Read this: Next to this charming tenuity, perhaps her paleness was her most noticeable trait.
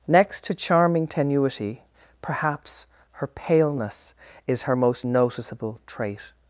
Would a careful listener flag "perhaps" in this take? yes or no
no